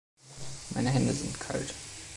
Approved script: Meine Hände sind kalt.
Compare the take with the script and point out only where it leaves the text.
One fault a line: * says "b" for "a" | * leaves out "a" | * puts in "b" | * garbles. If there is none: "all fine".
all fine